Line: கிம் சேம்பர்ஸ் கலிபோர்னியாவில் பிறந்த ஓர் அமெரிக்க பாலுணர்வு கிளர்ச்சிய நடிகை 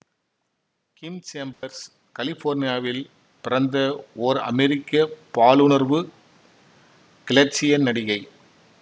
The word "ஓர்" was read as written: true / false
true